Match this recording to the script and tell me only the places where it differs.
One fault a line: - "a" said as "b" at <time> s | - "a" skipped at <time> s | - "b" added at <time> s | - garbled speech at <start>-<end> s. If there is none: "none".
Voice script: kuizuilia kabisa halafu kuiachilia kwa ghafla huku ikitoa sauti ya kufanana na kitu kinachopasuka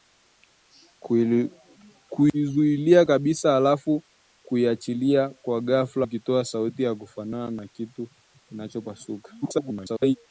- "huku" skipped at 6.1 s
- garbled speech at 9.4-10.2 s